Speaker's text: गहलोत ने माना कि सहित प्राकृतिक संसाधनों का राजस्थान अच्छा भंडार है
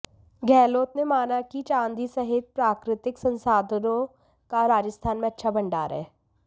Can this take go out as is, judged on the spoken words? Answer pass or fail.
fail